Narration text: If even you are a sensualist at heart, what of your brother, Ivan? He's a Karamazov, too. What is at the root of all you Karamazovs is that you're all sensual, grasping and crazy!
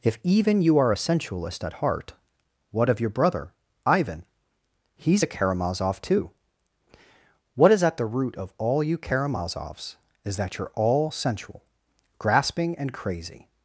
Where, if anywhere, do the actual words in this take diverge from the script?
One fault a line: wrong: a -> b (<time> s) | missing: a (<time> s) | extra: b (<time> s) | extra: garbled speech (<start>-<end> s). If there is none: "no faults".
no faults